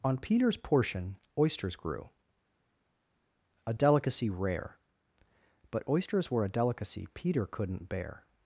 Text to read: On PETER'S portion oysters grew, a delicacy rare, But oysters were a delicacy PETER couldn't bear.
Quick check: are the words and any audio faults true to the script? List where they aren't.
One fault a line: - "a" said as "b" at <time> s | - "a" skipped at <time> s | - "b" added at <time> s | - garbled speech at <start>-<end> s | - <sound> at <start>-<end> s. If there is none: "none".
none